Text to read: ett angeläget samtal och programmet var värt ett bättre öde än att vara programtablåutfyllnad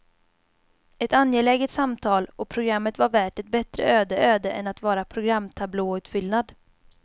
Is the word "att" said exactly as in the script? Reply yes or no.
yes